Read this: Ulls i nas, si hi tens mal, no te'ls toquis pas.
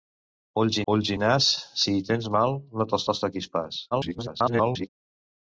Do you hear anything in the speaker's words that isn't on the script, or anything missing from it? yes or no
yes